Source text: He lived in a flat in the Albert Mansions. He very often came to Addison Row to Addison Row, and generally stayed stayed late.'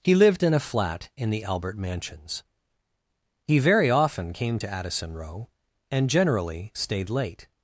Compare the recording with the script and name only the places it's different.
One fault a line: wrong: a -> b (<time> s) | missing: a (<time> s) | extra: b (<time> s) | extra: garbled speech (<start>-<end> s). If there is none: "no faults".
missing: to Addison Row (5.5 s)
missing: stayed (7.1 s)